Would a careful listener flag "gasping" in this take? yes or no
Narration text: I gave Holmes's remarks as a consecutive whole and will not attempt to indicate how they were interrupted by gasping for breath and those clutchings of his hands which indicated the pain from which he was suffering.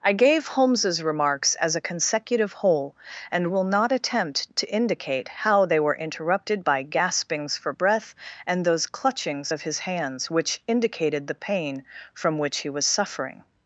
yes